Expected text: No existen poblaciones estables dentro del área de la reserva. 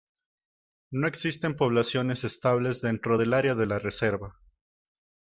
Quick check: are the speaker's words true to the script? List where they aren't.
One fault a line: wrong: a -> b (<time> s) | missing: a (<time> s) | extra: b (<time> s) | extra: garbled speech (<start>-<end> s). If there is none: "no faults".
no faults